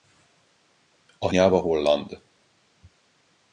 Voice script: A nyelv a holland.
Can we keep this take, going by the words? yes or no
yes